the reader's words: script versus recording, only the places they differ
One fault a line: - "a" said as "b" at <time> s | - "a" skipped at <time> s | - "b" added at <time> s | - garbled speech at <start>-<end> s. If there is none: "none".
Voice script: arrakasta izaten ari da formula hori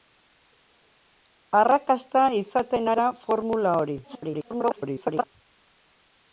- "ari" skipped at 2.9 s
- garbled speech at 4.0-5.2 s